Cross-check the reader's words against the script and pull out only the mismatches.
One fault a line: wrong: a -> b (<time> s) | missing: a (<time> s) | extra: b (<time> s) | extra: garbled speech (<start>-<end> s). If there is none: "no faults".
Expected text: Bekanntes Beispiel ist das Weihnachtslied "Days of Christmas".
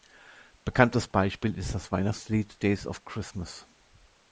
no faults